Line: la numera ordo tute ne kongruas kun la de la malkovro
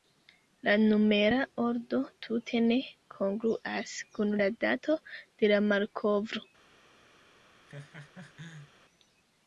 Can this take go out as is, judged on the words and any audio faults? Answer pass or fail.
fail